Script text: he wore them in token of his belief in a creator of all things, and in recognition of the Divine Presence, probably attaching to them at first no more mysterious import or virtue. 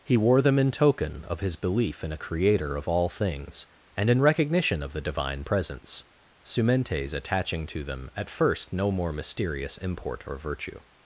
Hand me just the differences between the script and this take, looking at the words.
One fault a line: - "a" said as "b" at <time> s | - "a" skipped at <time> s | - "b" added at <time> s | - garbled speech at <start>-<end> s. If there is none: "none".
- "probably" said as "sumentes" at 6.4 s